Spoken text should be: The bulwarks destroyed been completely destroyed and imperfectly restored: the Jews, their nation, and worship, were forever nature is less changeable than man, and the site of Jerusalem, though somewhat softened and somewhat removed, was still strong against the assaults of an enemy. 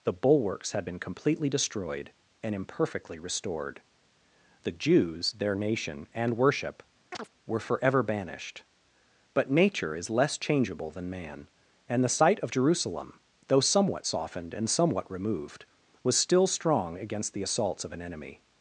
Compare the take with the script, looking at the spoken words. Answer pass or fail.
fail